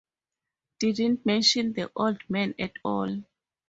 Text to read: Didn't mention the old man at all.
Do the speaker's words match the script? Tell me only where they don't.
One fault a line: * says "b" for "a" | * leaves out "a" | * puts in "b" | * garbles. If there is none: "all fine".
all fine